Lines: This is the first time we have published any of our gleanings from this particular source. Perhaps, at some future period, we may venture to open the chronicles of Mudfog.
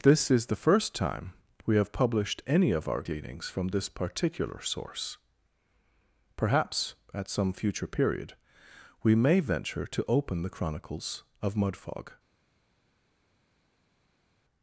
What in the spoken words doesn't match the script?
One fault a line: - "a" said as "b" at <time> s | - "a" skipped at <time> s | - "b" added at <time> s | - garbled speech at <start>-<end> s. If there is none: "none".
none